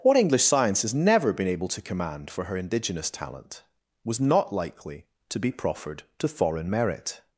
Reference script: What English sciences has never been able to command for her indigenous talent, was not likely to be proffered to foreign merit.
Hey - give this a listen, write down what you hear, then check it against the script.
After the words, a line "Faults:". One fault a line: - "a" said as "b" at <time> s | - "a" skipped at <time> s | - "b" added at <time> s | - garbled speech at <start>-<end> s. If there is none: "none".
What English science has never been able to command for her indigenous talent, was not likely to be proffered to foreign merit.
Faults:
- "sciences" said as "science" at 0.4 s